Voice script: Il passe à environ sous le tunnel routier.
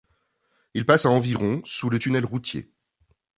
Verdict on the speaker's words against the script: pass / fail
pass